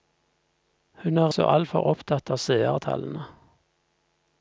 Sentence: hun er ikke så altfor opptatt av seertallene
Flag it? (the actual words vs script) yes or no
yes